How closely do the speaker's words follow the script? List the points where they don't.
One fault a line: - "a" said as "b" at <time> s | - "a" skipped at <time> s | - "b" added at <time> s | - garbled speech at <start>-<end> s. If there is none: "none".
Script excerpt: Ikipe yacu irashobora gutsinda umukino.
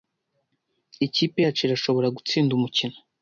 none